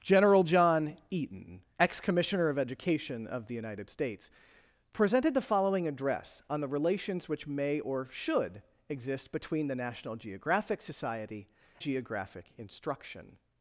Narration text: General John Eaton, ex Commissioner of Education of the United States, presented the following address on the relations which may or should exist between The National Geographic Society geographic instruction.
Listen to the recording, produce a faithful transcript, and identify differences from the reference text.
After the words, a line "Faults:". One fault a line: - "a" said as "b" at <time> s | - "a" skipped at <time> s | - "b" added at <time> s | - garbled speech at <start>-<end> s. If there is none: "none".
General John Eaton, ex Commissioner of Education of the United States, presented the following address on the relations which may or should exist between The National Geographic Society geographic instruction.
Faults:
none